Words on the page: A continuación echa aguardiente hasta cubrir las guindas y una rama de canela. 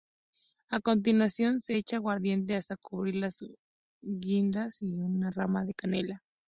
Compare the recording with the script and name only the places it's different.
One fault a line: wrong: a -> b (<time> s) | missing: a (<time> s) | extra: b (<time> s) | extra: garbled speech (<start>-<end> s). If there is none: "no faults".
extra: se (1.6 s)